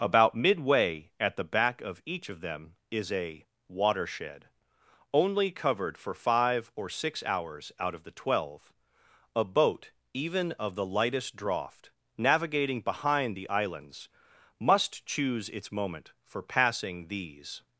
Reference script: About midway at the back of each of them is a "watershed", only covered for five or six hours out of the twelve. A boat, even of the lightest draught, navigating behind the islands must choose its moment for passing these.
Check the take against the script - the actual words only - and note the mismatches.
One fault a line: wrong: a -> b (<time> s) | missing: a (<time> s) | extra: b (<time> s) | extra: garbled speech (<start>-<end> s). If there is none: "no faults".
no faults